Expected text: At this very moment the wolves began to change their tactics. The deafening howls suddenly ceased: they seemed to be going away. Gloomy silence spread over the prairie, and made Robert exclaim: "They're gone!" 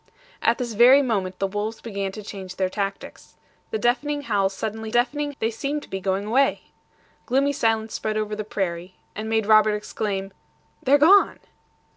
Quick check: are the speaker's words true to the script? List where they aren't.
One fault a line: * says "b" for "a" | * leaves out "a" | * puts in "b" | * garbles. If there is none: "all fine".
* says "deafening" for "ceased"